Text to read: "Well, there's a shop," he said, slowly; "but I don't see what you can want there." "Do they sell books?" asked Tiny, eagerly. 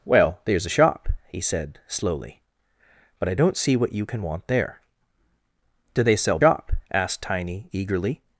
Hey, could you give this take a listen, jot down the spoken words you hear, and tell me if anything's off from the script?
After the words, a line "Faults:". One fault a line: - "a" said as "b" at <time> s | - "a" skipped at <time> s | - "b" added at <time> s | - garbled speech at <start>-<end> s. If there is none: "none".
"Well, there's a shop," he said, slowly; "but I don't see what you can want there." "Do they sell shop?" asked Tiny, eagerly.
Faults:
- "books" said as "shop" at 6.4 s